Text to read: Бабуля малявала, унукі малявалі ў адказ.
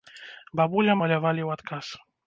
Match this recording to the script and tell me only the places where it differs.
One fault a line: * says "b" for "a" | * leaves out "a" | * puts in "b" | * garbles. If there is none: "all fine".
* leaves out "малявала унукі"